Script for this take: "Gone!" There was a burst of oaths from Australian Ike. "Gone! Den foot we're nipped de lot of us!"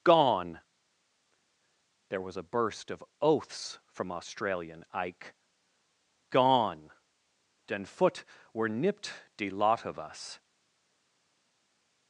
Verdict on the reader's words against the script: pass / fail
pass